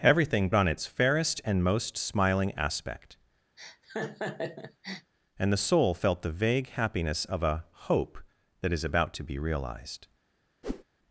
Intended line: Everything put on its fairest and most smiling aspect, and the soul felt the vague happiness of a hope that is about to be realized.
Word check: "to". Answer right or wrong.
right